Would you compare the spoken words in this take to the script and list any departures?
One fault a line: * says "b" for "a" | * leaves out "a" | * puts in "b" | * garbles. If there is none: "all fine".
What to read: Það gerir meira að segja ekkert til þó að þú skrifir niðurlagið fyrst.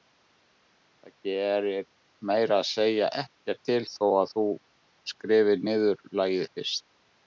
all fine